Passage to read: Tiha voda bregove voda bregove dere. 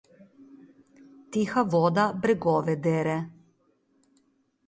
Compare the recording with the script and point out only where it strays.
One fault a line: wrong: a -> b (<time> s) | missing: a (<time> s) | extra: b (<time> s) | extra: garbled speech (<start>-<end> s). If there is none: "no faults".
missing: voda bregove (2.8 s)